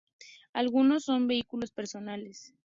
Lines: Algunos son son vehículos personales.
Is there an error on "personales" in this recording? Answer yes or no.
no